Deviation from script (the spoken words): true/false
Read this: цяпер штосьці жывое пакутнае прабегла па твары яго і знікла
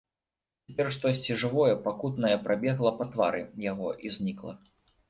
false